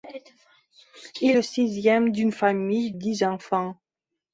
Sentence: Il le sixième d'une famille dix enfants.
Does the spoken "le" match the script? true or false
true